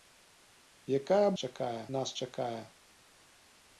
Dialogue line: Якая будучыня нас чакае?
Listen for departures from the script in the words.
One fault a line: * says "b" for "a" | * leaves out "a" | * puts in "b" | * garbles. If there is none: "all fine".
* says "чакае" for "будучыня"